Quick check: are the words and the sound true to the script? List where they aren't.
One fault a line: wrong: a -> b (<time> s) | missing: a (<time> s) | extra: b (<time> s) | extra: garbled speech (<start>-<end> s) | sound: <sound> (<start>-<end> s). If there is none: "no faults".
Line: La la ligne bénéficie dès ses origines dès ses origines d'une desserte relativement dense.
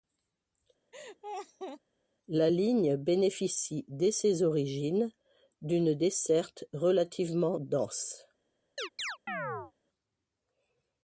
sound: laugh (0.9-1.8 s)
missing: la (2.5 s)
missing: dès ses origines (5.1 s)
sound: chirp (8.8-9.7 s)